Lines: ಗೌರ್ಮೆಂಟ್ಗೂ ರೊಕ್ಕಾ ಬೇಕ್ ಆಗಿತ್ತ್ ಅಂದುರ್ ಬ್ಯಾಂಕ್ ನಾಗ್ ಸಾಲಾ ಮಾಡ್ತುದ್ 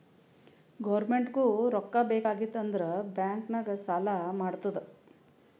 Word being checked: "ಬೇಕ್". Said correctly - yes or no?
yes